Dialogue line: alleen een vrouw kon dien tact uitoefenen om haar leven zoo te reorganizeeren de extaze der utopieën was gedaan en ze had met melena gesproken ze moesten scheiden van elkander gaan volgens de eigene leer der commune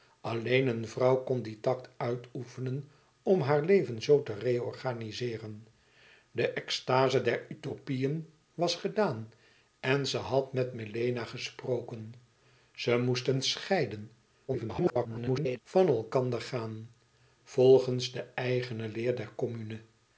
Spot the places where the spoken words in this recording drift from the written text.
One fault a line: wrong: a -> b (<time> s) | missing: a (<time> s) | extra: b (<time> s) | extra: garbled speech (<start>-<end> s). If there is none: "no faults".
extra: garbled speech (14.5-15.6 s)